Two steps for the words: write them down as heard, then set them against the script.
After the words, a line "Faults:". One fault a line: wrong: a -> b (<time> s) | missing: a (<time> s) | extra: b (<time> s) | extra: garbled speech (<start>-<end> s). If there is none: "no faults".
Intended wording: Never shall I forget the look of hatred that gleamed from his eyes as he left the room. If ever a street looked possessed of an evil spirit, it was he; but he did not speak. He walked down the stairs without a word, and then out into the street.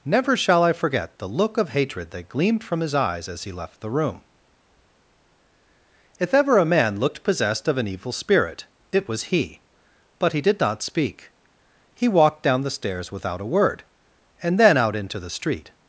Never shall I forget the look of hatred that gleamed from his eyes as he left the room. If ever a man looked possessed of an evil spirit, it was he; but he did not speak. He walked down the stairs without a word, and then out into the street.
Faults:
wrong: street -> man (6.7 s)